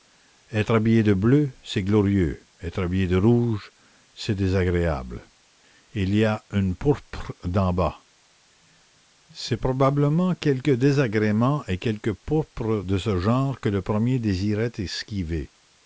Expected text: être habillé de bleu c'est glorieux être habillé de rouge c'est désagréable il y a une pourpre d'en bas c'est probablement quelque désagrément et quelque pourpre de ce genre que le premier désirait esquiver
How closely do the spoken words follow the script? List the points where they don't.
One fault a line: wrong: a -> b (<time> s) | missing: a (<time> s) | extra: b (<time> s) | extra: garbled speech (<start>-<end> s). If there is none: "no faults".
no faults